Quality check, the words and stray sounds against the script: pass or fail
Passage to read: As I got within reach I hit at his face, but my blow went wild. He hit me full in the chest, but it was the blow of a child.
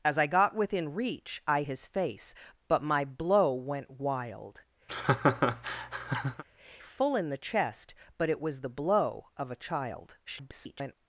fail